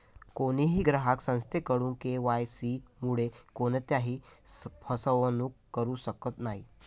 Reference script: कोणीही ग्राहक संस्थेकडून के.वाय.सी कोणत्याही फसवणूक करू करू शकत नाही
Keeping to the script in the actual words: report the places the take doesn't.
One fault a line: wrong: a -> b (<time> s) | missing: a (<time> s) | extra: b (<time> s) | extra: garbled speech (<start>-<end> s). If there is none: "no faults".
extra: मुळे (3.0 s)
missing: करू (5.9 s)